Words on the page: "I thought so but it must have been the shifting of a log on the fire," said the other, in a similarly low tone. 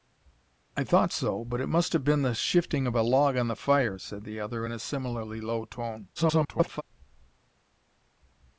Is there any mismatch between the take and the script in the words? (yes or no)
yes